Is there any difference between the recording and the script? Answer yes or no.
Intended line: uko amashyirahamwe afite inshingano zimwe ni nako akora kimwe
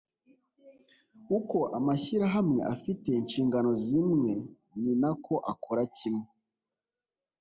no